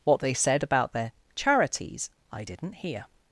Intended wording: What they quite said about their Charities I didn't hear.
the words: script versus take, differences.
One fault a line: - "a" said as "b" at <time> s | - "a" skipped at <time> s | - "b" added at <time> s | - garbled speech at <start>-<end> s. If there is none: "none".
- "quite" skipped at 0.3 s